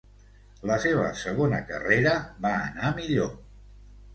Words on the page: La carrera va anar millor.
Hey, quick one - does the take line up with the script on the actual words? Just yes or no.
no